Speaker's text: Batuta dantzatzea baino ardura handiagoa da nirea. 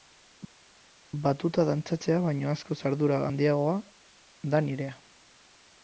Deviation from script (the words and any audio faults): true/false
true